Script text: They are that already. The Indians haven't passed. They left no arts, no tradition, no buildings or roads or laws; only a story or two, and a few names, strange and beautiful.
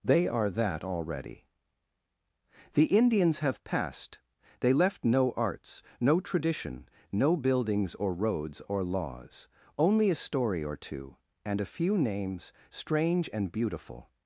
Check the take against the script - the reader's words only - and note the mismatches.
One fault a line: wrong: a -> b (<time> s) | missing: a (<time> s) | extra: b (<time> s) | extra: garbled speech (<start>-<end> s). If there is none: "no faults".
wrong: haven't -> have (3.4 s)